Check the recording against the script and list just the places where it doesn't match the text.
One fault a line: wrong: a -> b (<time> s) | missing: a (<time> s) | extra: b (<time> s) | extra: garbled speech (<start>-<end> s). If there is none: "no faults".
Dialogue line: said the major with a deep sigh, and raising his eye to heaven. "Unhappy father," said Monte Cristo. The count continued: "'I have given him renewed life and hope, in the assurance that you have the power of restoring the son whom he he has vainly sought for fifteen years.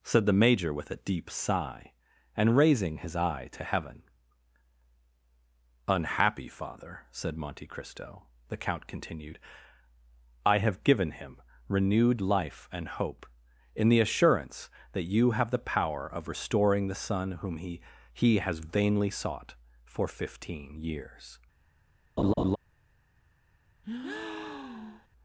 no faults